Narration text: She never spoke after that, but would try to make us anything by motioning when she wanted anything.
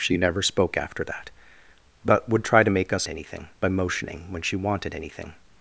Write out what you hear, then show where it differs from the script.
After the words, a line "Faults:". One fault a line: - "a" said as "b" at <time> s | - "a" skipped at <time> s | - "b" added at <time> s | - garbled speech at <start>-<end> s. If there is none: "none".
She never spoke after that, but would try to make us anything by motioning when she wanted anything.
Faults:
none